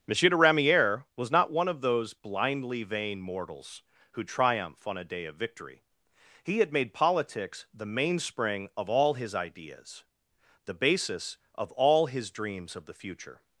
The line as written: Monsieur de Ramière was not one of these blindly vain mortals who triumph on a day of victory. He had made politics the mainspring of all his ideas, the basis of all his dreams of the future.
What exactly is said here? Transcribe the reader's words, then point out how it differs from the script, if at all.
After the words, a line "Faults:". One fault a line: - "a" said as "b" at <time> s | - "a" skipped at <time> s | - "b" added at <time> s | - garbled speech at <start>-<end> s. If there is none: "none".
Monsieur de Ramière was not one of those blindly vain mortals who triumph on a day of victory. He had made politics the mainspring of all his ideas, the basis of all his dreams of the future.
Faults:
- "these" said as "those" at 1.8 s